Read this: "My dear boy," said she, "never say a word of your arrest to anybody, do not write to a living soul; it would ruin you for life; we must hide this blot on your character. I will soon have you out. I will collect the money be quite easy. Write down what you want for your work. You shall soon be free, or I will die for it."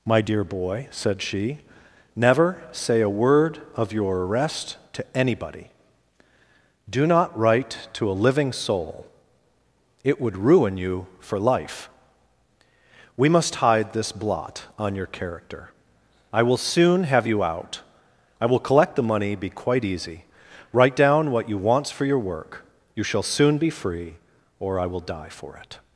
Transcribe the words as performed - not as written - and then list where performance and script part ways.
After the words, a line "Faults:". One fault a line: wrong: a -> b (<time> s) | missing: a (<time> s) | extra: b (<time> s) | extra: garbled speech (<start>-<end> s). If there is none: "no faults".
"My dear boy," said she, "never say a word of your arrest to anybody, do not write to a living soul; it would ruin you for life; we must hide this blot on your character. I will soon have you out. I will collect the money be quite easy. Write down what you want for your work. You shall soon be free, or I will die for it."
Faults:
no faults